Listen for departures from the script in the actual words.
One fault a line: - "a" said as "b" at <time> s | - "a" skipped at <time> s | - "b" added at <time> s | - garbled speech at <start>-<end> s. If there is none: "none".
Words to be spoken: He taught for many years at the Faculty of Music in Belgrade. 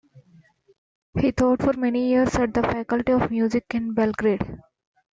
none